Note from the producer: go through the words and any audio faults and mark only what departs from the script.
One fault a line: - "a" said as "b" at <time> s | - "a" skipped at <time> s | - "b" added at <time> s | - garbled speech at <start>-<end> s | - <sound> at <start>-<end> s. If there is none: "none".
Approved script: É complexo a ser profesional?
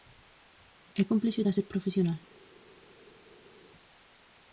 none